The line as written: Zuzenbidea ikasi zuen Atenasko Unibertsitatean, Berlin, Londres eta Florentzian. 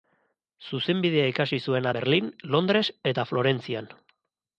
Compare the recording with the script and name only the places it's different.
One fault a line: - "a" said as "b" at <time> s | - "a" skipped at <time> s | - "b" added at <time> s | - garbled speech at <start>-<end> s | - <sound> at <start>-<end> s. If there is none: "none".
- "Atenasko Unibertsitatean" skipped at 1.9 s